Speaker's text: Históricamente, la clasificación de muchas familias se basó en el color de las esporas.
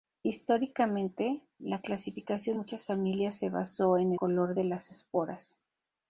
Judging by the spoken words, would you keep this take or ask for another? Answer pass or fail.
fail